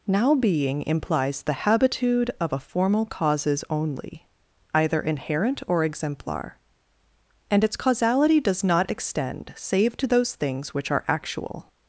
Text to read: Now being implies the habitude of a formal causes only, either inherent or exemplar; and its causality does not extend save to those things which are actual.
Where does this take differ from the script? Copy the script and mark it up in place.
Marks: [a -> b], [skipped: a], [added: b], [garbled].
Now being implies the habitude of a formal causes only, either inherent or exemplar; and its causality does not extend save to those things which are actual.